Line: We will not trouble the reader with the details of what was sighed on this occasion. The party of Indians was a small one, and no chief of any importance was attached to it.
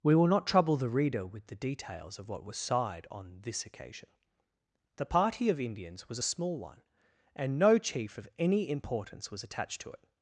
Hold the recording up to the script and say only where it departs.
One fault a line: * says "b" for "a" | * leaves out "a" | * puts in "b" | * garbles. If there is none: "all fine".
all fine